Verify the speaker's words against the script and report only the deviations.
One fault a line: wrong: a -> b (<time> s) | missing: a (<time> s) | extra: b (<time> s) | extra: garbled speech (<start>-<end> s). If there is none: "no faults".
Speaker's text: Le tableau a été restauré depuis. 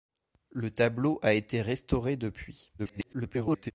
extra: garbled speech (2.8-3.7 s)